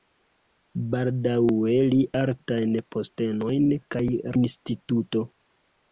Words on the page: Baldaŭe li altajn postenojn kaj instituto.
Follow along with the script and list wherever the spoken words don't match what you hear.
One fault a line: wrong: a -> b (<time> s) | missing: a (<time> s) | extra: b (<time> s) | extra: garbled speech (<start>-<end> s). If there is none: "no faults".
no faults